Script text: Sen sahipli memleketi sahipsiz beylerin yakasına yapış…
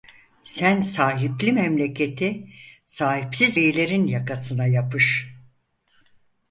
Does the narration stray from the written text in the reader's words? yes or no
no